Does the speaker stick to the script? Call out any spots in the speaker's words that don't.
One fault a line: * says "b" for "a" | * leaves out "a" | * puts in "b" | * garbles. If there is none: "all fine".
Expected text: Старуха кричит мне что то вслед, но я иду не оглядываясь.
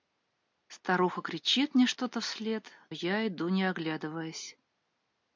* leaves out "но"